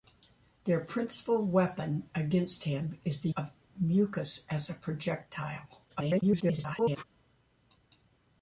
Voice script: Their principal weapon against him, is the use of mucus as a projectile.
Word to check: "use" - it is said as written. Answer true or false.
false